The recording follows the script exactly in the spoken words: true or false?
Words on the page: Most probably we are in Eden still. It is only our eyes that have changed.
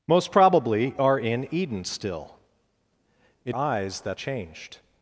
false